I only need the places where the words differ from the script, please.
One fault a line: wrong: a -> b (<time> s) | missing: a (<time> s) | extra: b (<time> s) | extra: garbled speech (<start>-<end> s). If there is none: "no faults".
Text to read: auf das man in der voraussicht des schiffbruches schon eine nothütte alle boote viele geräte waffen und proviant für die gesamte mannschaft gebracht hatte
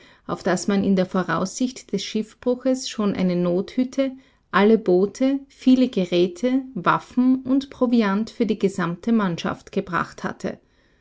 no faults